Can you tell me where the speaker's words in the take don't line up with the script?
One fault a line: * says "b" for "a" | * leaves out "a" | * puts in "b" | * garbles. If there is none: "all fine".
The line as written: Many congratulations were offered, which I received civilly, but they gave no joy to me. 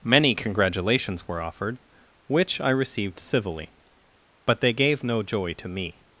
all fine